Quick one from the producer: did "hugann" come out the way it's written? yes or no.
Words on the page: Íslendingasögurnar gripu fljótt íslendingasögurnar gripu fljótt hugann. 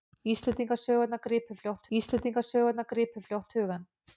yes